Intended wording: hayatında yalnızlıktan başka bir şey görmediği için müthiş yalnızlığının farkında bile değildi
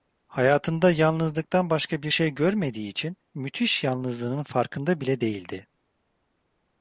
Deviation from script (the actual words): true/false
false